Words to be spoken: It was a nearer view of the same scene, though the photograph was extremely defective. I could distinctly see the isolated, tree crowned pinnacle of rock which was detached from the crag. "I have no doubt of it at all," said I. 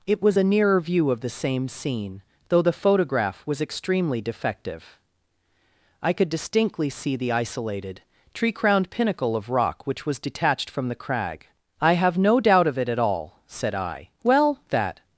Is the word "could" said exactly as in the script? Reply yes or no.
yes